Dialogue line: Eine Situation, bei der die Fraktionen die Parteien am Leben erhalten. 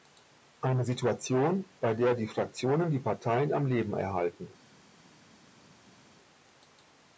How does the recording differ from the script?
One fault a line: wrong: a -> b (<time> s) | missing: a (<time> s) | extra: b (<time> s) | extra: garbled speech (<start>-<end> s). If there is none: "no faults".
no faults